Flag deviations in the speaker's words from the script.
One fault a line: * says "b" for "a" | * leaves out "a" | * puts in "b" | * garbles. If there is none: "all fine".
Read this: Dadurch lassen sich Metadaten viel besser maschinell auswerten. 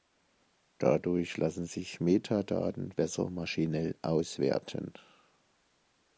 * leaves out "viel"